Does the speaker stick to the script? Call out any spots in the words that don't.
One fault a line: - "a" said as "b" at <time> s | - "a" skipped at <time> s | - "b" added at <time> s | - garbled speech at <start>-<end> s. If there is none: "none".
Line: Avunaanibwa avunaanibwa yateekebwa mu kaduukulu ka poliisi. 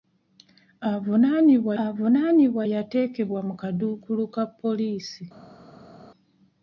none